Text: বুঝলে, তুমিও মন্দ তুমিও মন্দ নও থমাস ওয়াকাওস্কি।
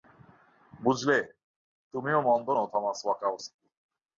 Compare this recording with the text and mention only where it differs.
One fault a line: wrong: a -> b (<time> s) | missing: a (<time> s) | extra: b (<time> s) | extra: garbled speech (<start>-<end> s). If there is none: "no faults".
missing: তুমিও মন্দ (2.5 s)